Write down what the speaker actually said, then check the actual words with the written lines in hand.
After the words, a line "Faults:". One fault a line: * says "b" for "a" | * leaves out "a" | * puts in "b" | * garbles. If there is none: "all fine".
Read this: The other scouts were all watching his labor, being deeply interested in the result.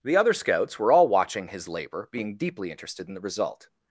The other scouts were all watching his labor, being deeply interested in the result.
Faults:
all fine